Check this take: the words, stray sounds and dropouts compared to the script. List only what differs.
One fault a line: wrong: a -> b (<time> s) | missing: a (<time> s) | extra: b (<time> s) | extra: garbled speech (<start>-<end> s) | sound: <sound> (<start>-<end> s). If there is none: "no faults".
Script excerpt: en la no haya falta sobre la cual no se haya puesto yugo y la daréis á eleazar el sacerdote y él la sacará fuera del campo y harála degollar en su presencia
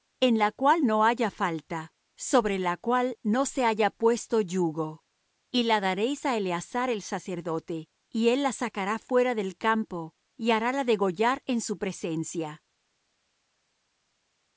extra: cual (0.5 s)